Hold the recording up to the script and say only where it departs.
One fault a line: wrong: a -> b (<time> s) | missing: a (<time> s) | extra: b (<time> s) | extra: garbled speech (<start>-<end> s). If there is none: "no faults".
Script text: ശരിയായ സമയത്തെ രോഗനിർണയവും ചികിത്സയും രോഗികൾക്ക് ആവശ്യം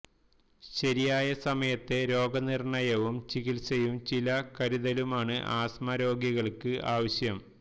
extra: ചില കരുതലുമാണ് ആസ്മ (4.1 s)